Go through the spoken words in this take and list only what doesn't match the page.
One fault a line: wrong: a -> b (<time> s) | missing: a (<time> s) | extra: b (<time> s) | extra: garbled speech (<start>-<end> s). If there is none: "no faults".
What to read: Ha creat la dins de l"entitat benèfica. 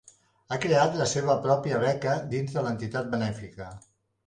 extra: seva pròpia beca (1.1 s)